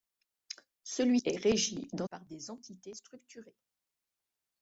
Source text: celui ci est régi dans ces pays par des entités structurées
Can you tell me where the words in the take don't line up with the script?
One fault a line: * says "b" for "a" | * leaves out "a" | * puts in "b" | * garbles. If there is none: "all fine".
* leaves out "ci"
* leaves out "ces pays"